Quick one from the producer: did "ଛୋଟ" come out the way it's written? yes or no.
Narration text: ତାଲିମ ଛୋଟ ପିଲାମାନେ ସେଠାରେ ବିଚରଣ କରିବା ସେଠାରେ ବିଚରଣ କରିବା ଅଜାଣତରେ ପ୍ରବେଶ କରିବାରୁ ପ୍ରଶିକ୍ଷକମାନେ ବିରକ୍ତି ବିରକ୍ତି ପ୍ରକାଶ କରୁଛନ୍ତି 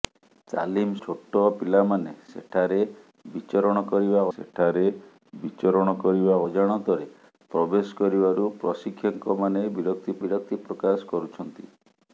yes